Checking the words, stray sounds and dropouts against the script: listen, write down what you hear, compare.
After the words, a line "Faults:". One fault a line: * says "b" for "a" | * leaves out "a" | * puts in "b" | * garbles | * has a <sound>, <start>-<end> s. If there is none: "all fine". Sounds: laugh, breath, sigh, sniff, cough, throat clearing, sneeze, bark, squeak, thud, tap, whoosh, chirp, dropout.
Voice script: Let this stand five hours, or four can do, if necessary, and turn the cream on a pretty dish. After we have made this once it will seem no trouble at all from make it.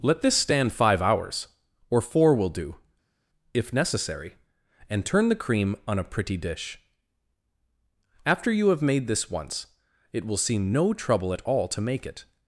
Let this stand five hours, or four will do, if necessary, and turn the cream on a pretty dish. After you have made this once it will seem no trouble at all to make it.
Faults:
* says "will" for "can"
* says "you" for "we"
* says "to" for "from"